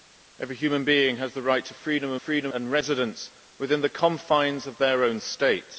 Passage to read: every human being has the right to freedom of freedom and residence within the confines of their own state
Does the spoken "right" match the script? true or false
true